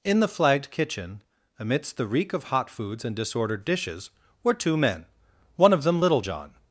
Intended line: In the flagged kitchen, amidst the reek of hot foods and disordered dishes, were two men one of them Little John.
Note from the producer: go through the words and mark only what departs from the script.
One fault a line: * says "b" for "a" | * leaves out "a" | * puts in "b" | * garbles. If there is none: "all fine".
all fine